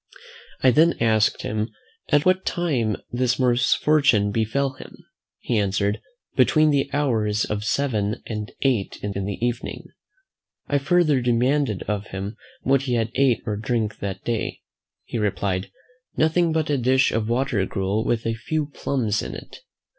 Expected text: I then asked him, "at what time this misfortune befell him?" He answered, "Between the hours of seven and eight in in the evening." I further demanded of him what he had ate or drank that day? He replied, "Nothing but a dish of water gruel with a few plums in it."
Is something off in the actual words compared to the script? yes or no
no